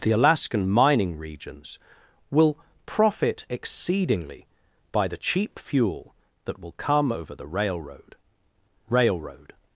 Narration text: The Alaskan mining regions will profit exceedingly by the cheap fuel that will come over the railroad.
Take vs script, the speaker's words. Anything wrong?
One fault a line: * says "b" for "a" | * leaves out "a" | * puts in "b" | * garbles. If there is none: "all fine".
* puts in "railroad"